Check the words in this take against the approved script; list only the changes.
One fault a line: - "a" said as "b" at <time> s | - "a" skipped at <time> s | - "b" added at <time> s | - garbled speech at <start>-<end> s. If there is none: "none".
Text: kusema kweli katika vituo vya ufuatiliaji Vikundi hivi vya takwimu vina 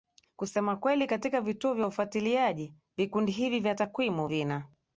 none